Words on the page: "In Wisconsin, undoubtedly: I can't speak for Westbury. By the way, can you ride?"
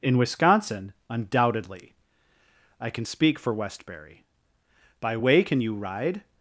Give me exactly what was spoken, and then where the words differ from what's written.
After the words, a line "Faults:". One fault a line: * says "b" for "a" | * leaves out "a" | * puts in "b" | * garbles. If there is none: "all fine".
"In Wisconsin, undoubtedly: I can speak for Westbury. By way, can you ride?"
Faults:
* says "can" for "can't"
* leaves out "the"